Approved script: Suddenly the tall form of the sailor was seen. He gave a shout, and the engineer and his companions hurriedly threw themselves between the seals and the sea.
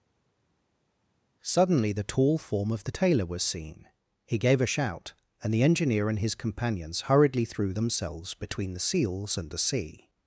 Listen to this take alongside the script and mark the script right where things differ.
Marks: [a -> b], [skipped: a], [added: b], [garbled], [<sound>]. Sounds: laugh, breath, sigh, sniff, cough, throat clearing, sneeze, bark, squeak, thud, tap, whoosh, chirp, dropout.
Suddenly the tall form of the [sailor -> tailor] was seen. He gave a shout, and the engineer and his companions hurriedly threw themselves between the seals and the sea.